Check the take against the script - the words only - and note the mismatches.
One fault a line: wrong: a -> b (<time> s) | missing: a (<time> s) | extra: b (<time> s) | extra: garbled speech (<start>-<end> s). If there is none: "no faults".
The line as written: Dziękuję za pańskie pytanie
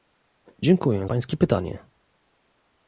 missing: za (1.1 s)